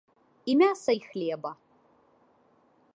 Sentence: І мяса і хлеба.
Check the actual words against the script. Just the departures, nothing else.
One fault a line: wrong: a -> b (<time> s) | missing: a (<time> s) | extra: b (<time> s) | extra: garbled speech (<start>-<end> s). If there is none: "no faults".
no faults